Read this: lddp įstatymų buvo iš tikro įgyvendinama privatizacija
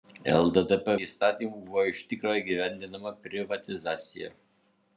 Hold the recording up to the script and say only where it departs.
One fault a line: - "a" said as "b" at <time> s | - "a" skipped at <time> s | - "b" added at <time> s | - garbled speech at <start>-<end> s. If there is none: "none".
none